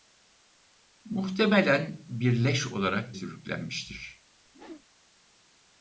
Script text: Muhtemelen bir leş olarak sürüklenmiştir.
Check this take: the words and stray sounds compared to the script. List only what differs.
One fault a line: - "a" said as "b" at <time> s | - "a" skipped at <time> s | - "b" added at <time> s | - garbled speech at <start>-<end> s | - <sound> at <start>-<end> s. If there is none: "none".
- whoosh at 4.5-4.9 s